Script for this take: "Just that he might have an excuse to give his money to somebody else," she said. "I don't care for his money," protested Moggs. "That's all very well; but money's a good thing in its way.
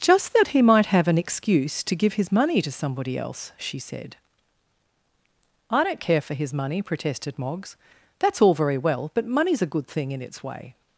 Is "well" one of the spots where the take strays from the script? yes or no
no